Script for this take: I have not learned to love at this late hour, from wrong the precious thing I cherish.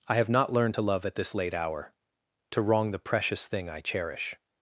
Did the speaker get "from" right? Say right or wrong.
wrong